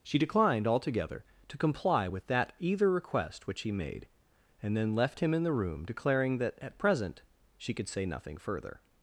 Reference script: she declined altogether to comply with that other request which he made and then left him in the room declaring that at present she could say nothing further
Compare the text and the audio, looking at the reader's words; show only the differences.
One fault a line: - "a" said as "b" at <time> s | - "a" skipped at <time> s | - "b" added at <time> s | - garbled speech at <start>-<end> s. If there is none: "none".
- "other" said as "either" at 2.6 s